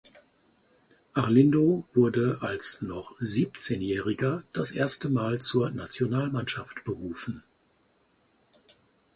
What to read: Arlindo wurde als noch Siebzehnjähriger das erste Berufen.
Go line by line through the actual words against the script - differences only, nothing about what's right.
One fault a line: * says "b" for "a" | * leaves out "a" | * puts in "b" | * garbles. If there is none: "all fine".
* puts in "Mal zur Nationalmannschaft"